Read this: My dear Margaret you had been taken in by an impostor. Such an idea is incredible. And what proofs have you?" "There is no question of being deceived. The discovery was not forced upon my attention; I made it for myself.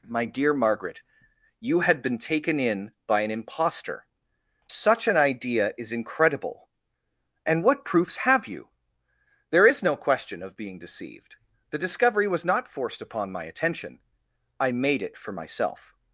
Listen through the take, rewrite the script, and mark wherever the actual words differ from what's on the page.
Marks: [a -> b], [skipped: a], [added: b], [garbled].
My dear Margaret you had been taken in by an impostor. Such an idea is incredible. And what proofs have you?" "There is no question of being deceived. The discovery was not forced upon my attention; I made it for myself.